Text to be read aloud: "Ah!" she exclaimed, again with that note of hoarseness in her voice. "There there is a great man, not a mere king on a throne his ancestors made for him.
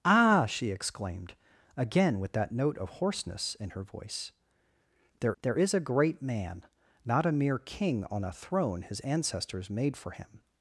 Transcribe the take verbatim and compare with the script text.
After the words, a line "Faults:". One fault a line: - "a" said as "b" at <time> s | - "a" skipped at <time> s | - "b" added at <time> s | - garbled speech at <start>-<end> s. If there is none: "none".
"Ah!" she exclaimed, again with that note of hoarseness in her voice. "There there is a great man, not a mere king on a throne his ancestors made for him.
Faults:
none